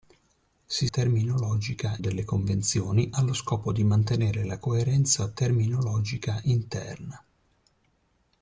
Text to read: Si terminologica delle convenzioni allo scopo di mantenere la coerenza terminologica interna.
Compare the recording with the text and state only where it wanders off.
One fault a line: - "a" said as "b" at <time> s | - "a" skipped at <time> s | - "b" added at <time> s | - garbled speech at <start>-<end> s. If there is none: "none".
none